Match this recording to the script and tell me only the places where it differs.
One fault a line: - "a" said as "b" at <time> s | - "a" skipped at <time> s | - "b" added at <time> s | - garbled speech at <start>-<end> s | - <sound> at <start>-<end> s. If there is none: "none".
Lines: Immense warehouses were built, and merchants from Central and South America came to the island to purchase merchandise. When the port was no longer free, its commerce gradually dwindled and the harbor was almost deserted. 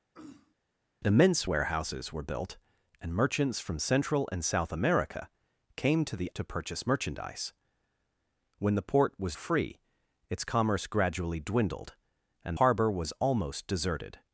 - throat clearing at 0.1-0.5 s
- "island" skipped at 6.3 s
- "no longer" skipped at 9.4 s
- "the" skipped at 12.6 s